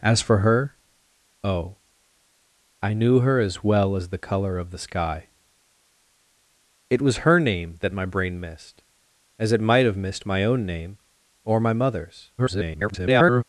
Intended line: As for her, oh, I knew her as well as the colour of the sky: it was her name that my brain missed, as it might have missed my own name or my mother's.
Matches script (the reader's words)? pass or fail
fail